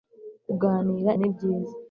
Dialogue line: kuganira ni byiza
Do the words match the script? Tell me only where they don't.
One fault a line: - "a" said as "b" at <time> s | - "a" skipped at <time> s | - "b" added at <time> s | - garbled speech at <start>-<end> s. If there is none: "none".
none